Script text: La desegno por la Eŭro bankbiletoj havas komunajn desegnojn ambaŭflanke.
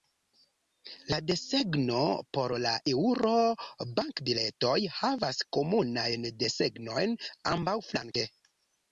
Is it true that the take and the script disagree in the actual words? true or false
false